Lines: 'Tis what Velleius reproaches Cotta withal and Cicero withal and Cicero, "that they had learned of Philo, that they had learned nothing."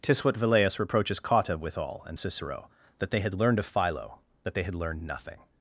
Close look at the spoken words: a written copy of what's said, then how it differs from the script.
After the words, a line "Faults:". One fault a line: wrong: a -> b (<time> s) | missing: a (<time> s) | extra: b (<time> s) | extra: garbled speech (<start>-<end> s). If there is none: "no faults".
'Tis what Velleius reproaches Cotta withal and Cicero, "that they had learned of Philo, that they had learned nothing."
Faults:
missing: withal and Cicero (2.7 s)